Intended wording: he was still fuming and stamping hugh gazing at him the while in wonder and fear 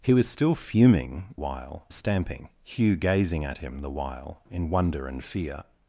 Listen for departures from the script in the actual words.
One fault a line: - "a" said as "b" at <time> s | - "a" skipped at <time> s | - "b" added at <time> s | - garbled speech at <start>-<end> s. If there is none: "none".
- "and" said as "while" at 1.3 s